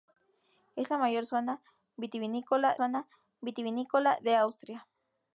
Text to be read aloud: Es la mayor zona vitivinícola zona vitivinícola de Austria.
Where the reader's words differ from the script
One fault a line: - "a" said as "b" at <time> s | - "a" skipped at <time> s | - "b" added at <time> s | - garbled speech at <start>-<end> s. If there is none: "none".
none